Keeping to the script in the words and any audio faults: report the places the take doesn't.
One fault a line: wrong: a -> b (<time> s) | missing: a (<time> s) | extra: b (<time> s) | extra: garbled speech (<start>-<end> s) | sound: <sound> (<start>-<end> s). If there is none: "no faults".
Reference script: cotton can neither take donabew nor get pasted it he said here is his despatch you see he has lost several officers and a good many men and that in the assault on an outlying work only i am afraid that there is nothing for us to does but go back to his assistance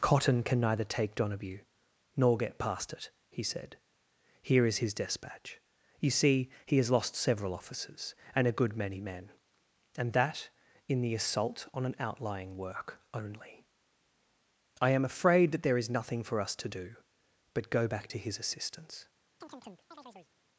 wrong: pasted -> past (2.6 s)
wrong: does -> do (16.7 s)
sound: chirp (19.4-20.3 s)